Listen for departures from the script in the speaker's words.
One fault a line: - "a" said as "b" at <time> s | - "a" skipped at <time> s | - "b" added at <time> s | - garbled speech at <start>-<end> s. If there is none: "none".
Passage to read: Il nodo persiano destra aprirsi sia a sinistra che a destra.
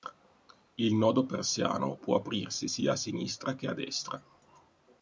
- "destra" said as "può" at 1.9 s